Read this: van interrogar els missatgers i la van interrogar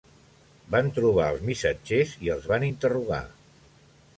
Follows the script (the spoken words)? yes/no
no